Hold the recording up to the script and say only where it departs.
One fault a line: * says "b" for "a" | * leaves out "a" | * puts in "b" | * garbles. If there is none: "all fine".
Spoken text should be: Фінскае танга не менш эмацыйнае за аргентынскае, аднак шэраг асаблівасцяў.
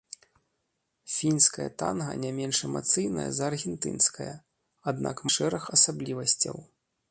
all fine